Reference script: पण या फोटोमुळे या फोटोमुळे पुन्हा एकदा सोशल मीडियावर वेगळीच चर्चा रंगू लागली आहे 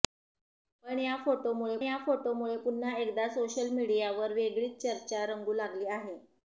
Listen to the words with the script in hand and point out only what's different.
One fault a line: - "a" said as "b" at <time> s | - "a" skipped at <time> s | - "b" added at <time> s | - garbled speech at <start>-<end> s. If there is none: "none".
none